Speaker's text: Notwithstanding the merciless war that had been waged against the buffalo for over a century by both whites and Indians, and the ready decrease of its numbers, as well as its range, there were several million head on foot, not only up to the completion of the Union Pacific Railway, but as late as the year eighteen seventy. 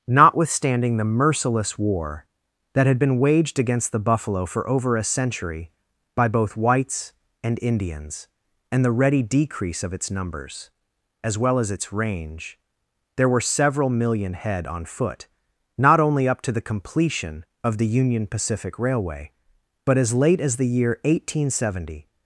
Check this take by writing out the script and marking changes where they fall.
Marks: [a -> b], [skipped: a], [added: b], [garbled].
Notwithstanding the merciless war that had been waged against the buffalo for over a century by both whites and Indians, and the ready decrease of its numbers, as well as its range, there were several million head on foot, not only up to the completion of the Union Pacific Railway, but as late as the year eighteen seventy.